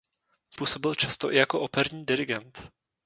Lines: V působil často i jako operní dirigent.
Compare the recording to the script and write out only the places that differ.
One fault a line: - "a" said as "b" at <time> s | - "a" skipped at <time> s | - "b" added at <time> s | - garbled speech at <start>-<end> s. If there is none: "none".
none